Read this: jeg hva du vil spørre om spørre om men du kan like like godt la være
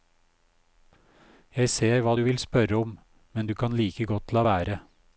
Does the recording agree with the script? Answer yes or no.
no